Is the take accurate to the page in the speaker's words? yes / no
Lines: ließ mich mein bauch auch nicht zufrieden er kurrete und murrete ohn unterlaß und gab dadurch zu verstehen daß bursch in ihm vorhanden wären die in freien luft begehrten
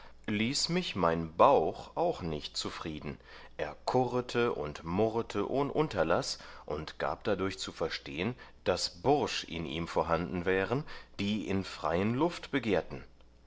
yes